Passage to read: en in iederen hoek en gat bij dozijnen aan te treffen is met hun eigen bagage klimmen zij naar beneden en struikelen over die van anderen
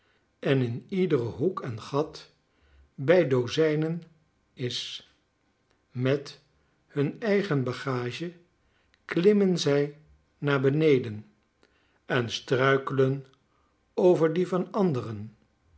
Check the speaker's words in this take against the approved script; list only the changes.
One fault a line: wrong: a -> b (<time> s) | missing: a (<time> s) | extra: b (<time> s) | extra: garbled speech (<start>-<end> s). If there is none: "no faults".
missing: aan te treffen (4.0 s)